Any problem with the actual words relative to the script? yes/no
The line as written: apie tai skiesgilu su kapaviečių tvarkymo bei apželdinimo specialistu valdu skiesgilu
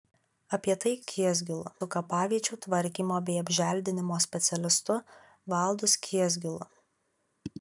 no